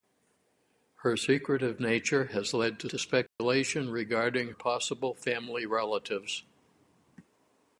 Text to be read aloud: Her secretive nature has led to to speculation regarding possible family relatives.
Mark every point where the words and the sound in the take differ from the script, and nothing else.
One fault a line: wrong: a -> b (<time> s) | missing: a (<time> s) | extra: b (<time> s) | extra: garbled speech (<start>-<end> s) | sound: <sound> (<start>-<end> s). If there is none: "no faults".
sound: dropout (3.3-3.4 s)